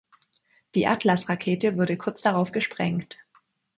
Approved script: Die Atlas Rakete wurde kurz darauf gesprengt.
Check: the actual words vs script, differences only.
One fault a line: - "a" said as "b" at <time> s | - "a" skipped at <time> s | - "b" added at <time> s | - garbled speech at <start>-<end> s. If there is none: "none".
none